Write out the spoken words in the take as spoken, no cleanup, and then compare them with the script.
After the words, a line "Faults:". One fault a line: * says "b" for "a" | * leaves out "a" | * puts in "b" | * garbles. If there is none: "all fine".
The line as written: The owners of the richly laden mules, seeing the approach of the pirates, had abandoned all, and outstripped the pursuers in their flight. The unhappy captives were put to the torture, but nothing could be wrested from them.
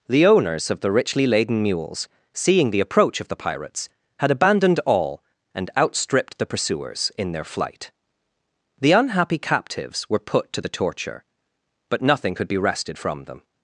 The owners of the richly laden mules, seeing the approach of the pirates, had abandoned all, and outstripped the pursuers in their flight. The unhappy captives were put to the torture, but nothing could be wrested from them.
Faults:
all fine